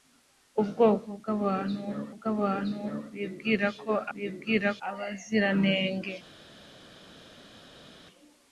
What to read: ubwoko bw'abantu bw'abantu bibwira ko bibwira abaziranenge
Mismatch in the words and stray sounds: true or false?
false